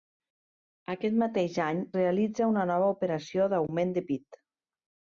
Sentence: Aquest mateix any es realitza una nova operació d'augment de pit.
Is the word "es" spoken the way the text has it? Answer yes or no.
no